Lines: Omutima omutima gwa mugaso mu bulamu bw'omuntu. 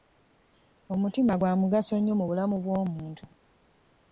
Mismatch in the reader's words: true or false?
true